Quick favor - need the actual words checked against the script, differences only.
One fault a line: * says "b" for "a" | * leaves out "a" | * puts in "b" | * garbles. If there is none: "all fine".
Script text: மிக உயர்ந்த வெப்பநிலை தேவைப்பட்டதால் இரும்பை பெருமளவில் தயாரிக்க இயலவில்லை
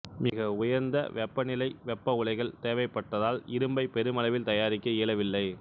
* puts in "வெப்ப உலைகள்"